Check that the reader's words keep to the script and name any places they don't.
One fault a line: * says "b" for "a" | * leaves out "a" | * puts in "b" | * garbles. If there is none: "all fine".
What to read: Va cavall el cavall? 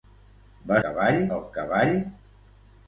all fine